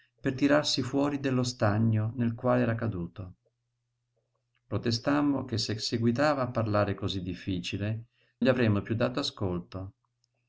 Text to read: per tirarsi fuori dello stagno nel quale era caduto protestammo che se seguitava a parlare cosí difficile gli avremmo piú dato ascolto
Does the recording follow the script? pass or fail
pass